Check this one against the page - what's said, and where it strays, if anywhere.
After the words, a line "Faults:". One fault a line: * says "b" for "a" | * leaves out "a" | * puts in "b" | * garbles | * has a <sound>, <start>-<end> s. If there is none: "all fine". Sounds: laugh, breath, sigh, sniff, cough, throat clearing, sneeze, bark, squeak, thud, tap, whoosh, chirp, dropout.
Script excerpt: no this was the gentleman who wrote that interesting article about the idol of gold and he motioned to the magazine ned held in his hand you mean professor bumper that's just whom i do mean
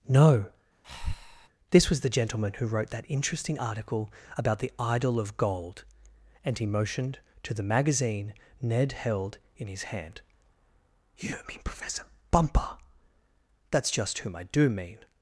no this was the gentleman who wrote that interesting article about the idol of gold and he motioned to the magazine ned held in his hand you mean professor bumper that's just whom i do mean
Faults:
* has a breath, 0.8-1.5 s